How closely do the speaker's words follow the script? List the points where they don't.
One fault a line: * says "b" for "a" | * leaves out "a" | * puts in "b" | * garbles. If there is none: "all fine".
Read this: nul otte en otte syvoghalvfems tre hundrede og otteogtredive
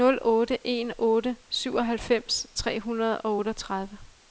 all fine